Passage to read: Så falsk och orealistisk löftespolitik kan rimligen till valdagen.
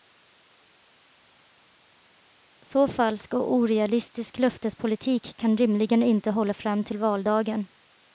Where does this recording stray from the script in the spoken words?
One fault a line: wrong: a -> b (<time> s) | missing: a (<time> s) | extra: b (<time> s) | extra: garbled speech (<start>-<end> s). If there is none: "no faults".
extra: inte hålla fram (6.0 s)